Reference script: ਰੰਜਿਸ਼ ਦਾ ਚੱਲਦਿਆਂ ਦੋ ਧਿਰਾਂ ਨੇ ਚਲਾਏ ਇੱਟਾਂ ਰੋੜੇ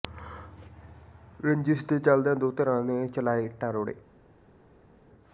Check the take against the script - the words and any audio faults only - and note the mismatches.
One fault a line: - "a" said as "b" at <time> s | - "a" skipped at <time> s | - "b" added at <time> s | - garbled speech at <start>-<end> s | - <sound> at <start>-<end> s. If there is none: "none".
- "ਦਾ" said as "ਦੇ" at 1.9 s